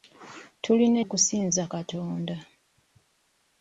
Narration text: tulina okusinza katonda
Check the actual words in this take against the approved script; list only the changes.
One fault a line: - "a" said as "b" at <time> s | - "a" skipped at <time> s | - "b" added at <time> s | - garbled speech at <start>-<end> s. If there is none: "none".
none